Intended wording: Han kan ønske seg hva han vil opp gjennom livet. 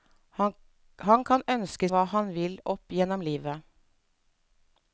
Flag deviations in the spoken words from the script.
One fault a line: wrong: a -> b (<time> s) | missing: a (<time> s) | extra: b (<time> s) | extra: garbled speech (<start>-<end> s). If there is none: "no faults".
missing: seg (1.9 s)